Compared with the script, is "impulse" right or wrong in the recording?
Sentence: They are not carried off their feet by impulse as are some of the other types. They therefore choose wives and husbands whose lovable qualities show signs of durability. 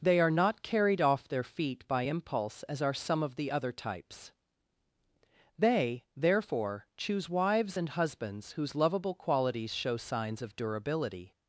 right